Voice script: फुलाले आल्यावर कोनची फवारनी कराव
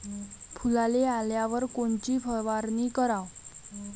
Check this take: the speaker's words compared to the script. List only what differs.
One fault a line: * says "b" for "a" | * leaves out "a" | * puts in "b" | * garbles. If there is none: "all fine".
all fine